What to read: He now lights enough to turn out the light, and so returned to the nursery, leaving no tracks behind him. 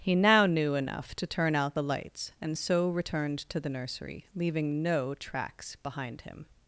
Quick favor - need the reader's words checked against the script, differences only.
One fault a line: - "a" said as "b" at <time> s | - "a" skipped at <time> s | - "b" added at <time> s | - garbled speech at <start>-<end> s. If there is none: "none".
- "lights" said as "knew" at 0.5 s
- "light" said as "lights" at 1.8 s